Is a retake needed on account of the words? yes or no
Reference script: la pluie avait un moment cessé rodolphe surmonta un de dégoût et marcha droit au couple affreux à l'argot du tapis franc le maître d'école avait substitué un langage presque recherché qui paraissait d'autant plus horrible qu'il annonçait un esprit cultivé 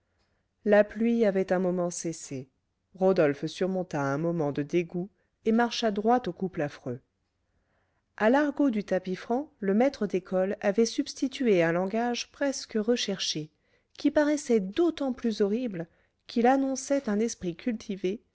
yes